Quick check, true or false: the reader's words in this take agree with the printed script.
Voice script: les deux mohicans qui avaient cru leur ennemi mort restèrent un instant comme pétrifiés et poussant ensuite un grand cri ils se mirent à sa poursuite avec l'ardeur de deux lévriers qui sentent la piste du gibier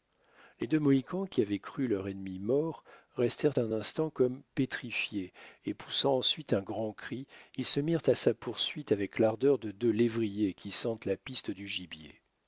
true